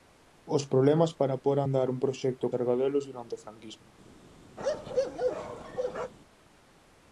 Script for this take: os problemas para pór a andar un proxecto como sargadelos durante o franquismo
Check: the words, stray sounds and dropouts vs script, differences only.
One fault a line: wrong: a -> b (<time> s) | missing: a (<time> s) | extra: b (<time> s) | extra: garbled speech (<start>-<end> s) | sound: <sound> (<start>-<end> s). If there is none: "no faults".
missing: como (2.5 s)
sound: bark (4.6-6.1 s)